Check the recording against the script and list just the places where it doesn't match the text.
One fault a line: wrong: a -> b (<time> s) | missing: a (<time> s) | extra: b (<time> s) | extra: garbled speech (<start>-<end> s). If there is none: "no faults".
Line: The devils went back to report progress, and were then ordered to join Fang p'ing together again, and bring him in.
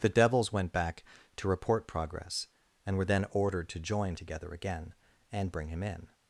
missing: Fang p'ing (4.2 s)